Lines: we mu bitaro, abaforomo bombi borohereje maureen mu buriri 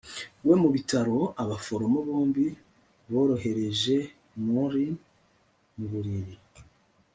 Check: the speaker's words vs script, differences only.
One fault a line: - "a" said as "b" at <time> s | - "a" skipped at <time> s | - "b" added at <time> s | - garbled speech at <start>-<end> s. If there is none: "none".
none